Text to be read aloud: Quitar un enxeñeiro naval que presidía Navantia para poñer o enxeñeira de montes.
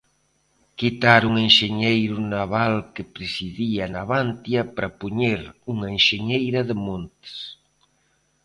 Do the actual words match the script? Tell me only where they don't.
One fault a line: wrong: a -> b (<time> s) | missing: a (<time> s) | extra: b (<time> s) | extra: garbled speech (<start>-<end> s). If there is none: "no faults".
wrong: o -> unha (5.7 s)